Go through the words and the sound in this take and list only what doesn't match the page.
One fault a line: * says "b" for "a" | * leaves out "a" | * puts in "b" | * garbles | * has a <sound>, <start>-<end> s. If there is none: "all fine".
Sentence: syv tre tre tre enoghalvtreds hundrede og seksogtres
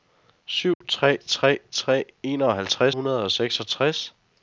* has a dropout, 0.7-0.8 s